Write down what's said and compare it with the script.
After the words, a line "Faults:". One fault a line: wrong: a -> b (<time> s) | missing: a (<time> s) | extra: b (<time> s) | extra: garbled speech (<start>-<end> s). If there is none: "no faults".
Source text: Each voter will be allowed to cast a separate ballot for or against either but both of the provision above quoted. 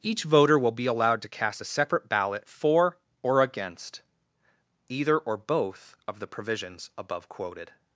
Each voter will be allowed to cast a separate ballot for or against either or both of the provisions above quoted.
Faults:
wrong: but -> or (5.2 s)
wrong: provision -> provisions (6.3 s)